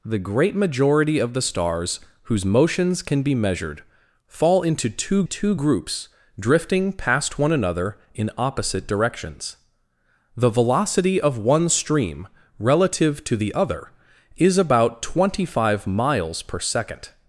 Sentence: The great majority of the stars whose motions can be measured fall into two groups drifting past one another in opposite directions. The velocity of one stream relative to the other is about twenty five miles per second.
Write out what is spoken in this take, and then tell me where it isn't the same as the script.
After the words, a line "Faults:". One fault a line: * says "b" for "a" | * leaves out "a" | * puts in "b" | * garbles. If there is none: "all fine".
The great majority of the stars whose motions can be measured fall into two two groups drifting past one another in opposite directions. The velocity of one stream relative to the other is about twenty five miles per second.
Faults:
* puts in "two"